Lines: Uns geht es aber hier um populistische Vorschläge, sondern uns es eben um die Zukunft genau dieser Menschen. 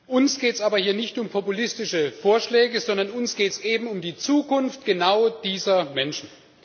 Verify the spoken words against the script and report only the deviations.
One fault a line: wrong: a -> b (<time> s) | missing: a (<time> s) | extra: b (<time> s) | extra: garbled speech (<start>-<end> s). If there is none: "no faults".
extra: nicht (0.9 s)
extra: geht (3.4 s)